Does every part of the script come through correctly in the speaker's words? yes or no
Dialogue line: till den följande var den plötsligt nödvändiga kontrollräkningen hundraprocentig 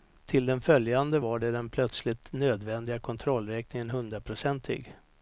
yes